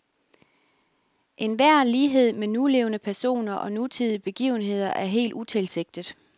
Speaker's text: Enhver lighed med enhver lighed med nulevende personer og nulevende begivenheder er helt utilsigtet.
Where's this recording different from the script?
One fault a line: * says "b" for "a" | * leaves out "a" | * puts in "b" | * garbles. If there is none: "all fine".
* leaves out "enhver lighed med"
* says "nutidige" for "nulevende"